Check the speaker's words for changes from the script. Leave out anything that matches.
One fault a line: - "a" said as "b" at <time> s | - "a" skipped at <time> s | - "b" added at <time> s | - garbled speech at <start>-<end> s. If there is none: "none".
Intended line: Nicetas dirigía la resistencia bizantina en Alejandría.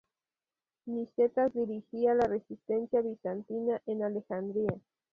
none